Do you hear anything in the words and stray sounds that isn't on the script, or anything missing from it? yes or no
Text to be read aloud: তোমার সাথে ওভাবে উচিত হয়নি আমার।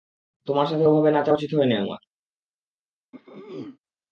yes